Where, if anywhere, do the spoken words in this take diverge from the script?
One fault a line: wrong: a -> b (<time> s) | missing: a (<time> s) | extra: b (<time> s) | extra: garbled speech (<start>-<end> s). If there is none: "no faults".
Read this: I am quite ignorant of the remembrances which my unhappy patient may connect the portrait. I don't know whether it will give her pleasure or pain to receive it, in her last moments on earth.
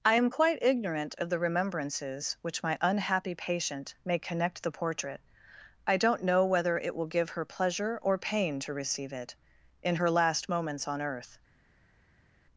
no faults